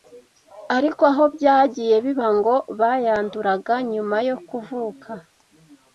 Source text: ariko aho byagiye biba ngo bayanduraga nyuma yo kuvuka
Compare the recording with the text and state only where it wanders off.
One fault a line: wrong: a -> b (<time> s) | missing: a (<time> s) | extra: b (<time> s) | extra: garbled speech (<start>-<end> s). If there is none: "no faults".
no faults